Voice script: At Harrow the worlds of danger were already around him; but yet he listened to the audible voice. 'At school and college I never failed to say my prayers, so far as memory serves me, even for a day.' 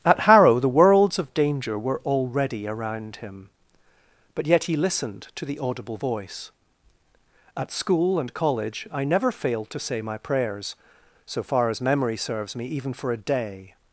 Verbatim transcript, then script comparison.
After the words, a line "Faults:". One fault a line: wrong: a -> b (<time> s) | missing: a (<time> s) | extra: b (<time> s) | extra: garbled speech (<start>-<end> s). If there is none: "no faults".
At Harrow the worlds of danger were already around him; but yet he listened to the audible voice. 'At school and college I never failed to say my prayers, so far as memory serves me, even for a day.'
Faults:
no faults